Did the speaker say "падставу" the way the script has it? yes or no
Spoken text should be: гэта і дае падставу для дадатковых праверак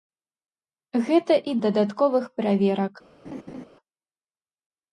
no